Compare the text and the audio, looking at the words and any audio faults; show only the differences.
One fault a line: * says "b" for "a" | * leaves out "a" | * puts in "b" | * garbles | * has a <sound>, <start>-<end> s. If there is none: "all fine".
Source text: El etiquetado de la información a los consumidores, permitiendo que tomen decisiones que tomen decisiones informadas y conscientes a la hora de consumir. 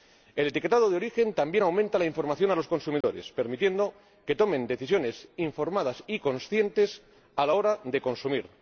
* puts in "origen también aumenta"
* has a dropout, 3.0-3.0 s
* leaves out "que tomen decisiones"